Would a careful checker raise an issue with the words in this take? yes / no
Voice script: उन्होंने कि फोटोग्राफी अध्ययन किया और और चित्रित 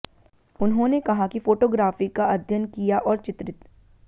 yes